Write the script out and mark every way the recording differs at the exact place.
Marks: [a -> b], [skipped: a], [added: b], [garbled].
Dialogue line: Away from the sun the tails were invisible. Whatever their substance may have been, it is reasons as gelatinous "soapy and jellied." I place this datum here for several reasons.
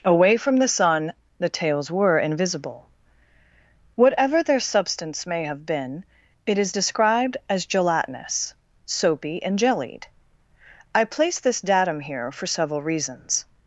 Away from the sun the tails were invisible. Whatever their substance may have been, it is [reasons -> described] as gelatinous "soapy and jellied." I place this datum here for several reasons.